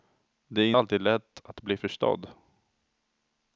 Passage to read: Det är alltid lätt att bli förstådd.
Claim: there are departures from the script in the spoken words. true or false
false